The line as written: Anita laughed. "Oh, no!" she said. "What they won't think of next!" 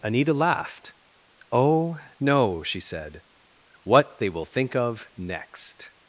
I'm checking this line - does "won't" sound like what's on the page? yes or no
no